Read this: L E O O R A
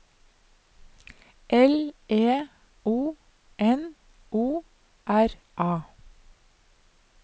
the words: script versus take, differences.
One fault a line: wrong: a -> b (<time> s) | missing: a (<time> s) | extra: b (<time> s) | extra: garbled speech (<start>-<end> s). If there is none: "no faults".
extra: N (3.6 s)